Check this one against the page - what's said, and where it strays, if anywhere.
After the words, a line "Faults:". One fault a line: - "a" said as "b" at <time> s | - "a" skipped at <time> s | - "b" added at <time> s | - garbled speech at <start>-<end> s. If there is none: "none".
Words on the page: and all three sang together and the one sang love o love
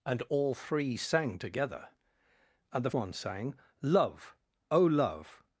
and all three sang together and the one sang love o love
Faults:
none